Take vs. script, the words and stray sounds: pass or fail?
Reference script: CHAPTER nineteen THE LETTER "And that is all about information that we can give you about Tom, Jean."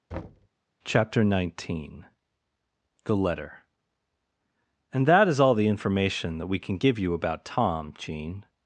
fail